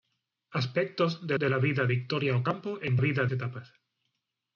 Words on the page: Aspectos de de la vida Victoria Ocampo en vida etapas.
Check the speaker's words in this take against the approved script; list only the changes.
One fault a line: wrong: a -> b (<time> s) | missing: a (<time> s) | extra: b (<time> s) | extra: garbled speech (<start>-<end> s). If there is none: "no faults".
no faults